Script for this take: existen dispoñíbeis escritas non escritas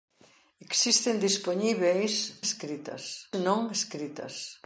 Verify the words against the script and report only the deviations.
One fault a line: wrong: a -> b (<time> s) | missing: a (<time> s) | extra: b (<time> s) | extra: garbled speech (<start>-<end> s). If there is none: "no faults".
no faults